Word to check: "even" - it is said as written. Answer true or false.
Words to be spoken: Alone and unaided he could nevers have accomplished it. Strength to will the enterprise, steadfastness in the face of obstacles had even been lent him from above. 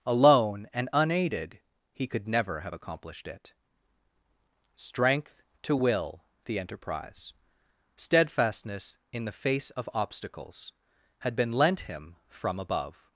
false